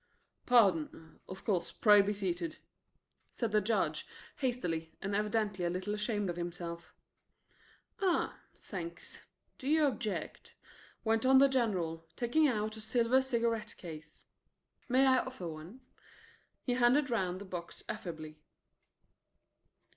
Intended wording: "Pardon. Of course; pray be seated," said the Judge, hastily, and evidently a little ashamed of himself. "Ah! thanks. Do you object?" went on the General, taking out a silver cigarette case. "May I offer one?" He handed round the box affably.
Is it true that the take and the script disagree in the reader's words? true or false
false